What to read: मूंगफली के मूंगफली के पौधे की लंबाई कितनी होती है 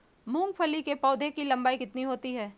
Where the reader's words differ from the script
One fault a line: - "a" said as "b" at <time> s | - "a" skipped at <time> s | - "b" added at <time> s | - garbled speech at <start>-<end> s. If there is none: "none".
- "मूंगफली के" skipped at 0.9 s